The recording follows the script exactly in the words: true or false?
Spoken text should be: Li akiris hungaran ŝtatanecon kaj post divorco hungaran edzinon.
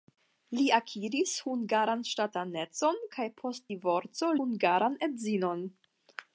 true